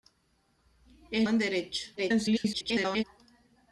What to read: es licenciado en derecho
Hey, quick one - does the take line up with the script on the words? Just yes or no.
no